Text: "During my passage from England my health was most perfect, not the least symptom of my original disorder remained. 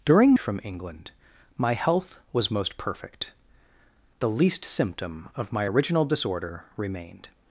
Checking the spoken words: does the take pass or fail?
fail